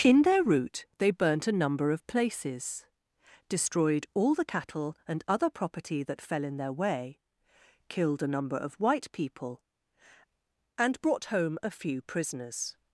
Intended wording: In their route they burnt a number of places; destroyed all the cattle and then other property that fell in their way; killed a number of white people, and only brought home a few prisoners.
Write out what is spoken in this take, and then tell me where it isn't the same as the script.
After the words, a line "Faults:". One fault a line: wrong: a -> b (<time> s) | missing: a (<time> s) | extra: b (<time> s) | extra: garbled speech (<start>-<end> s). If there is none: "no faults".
In their route they burnt a number of places; destroyed all the cattle and other property that fell in their way; killed a number of white people, and brought home a few prisoners.
Faults:
missing: then (5.2 s)
missing: only (11.0 s)